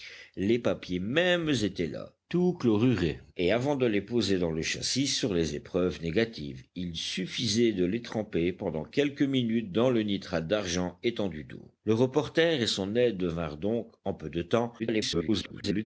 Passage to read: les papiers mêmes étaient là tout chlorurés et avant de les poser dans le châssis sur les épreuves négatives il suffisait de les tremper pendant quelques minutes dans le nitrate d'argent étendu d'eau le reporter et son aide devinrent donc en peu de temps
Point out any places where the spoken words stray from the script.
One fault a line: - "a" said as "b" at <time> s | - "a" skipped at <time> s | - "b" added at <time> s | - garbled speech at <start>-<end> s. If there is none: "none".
- garbled speech at 14.8-15.9 s